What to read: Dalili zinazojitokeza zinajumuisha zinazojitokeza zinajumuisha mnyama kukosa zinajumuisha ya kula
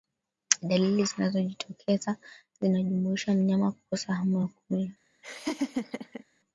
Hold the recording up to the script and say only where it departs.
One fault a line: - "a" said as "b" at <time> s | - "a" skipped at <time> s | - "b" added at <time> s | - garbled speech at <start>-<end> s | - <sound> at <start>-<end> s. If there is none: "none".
- "zinazojitokeza zinajumuisha" skipped at 3.3 s
- "zinajumuisha" said as "hamu" at 4.1 s
- laugh at 5.2-6.2 s